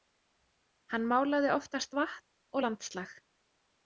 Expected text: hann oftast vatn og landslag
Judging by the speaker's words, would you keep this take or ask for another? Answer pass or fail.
fail